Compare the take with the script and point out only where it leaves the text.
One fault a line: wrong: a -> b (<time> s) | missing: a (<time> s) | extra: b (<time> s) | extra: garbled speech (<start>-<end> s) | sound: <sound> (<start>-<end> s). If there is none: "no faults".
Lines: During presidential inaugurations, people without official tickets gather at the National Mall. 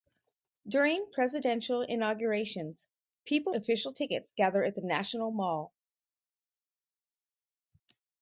missing: without (3.5 s)